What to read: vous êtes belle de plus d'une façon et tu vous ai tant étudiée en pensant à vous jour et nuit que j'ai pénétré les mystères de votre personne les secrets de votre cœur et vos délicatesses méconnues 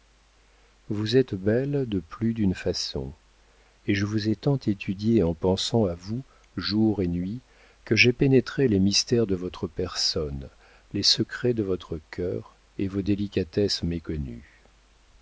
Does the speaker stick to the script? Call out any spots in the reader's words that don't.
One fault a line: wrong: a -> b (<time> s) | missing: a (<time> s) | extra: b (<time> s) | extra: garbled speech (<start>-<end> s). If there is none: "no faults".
wrong: tu -> je (3.9 s)